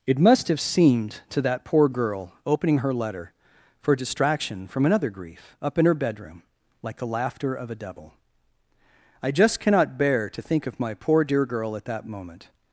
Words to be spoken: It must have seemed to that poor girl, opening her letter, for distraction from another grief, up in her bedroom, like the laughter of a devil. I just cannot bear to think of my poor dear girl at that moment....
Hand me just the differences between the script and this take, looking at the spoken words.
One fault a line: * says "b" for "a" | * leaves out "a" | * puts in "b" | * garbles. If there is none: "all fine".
all fine